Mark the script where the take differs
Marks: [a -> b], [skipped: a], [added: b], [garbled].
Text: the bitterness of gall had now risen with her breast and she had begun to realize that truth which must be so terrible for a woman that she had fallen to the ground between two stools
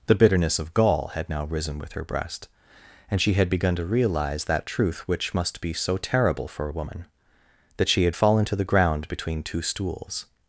the bitterness of gall had now risen with her breast and she had begun to realize that truth which must be so terrible for a woman that she had fallen to the ground between two stools